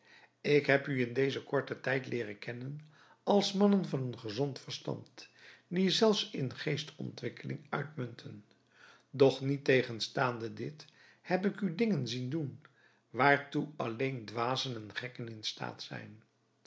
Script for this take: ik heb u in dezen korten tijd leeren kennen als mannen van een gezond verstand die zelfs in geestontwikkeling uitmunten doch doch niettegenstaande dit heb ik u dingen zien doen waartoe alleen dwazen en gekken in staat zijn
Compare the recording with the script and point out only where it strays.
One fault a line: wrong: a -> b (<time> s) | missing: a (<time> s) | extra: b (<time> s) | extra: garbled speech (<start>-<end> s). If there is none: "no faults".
missing: doch (9.4 s)